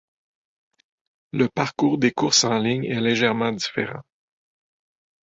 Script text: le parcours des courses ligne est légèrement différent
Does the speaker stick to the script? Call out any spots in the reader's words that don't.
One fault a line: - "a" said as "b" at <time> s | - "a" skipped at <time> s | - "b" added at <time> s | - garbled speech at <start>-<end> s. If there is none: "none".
- "en" added at 2.4 s